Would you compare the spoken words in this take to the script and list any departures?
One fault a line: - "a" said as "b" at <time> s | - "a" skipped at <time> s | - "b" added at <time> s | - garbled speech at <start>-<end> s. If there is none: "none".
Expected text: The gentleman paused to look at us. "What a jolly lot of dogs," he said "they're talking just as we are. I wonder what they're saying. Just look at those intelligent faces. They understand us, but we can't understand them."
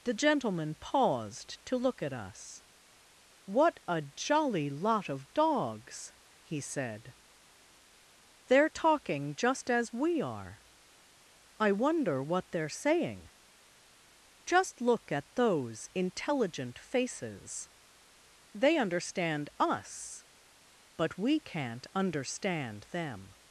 none